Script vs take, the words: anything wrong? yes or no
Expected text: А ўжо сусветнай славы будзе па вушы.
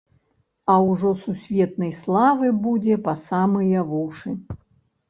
yes